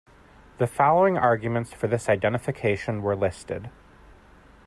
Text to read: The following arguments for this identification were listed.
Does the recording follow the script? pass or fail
pass